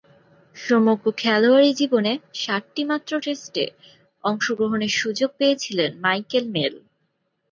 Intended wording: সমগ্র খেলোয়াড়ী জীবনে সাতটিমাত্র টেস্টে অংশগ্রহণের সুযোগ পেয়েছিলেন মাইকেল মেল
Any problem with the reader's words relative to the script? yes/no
no